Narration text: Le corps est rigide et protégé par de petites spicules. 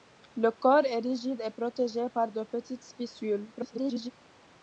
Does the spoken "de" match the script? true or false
true